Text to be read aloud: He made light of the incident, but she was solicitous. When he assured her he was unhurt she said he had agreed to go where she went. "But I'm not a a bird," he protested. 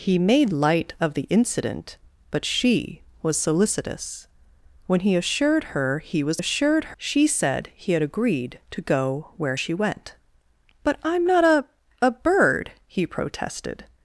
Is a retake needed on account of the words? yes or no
yes